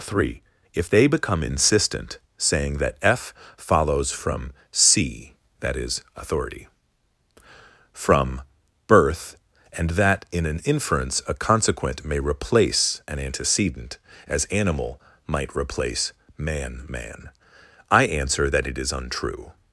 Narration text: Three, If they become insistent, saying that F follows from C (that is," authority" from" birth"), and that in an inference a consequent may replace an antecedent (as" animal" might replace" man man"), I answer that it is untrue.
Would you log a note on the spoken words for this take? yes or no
no